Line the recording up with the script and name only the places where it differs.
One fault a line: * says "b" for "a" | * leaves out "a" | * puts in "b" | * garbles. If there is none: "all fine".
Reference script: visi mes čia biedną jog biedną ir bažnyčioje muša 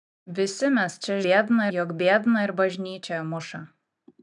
all fine